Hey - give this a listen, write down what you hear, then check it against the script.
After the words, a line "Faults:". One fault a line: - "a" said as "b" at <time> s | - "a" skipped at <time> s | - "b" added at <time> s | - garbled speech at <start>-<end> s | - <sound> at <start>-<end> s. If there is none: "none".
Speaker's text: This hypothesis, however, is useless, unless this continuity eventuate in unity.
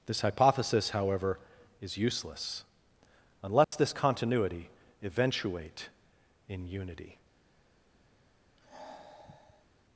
This hypothesis, however, is useless, unless this continuity eventuate in unity.
Faults:
- dropout at 3.6-3.7 s
- sigh at 8.6-9.7 s